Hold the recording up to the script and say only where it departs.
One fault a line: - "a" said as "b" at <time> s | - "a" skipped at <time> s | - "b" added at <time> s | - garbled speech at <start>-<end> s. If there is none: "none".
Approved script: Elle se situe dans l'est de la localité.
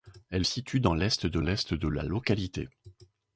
- "se" skipped at 0.5 s
- "l'est de" added at 1.4 s